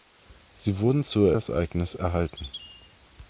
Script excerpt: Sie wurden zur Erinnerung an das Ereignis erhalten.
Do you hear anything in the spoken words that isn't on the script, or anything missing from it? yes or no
yes